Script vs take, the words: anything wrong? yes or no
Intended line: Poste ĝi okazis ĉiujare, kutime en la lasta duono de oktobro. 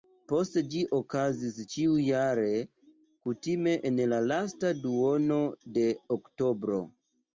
no